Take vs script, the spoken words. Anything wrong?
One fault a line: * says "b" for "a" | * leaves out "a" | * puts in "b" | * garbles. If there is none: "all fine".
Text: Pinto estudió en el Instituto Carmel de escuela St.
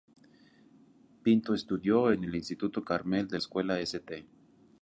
all fine